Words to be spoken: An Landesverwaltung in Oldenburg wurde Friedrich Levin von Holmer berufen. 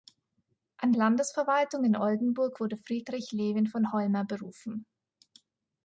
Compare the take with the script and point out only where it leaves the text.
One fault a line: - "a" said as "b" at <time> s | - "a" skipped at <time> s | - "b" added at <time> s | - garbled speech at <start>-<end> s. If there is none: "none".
none